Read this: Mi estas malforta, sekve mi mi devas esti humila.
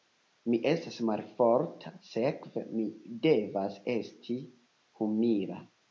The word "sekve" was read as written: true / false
true